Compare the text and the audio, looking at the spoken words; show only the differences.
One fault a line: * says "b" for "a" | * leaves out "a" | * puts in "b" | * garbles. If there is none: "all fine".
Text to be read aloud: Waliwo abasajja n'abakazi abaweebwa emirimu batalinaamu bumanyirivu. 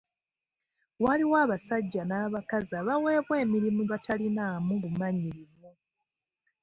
all fine